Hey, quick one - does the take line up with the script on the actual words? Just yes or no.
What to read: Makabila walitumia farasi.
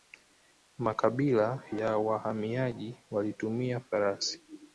no